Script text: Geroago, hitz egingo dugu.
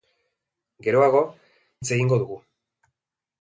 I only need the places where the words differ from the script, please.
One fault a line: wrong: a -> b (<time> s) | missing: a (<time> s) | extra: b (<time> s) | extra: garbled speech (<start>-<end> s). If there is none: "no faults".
no faults